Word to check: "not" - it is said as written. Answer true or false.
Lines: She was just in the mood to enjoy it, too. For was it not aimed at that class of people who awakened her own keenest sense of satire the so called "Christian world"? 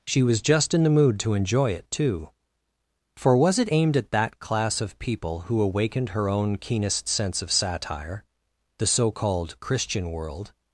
false